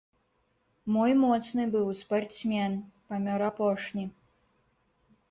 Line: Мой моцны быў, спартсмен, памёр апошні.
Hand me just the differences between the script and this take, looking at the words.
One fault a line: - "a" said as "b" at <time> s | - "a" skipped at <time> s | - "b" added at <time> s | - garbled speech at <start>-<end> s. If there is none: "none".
none